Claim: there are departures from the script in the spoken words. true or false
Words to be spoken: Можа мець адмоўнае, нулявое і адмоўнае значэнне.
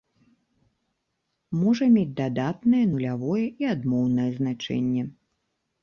true